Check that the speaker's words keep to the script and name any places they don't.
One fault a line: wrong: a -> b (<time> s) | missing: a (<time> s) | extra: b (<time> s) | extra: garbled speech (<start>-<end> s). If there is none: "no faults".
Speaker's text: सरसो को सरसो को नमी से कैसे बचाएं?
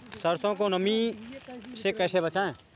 missing: सरसो को (0.7 s)